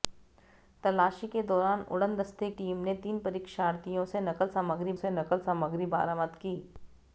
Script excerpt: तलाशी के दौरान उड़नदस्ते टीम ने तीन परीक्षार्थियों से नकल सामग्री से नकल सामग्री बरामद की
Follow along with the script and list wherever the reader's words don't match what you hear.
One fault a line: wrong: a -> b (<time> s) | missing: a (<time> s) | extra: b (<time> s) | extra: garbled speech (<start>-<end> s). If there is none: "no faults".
no faults